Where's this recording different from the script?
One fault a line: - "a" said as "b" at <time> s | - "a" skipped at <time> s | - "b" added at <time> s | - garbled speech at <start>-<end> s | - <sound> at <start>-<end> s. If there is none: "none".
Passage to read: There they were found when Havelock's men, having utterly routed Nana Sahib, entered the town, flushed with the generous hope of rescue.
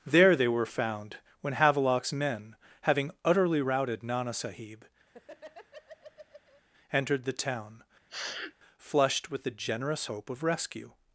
- laugh at 5.1-6.6 s
- sniff at 8.1-8.5 s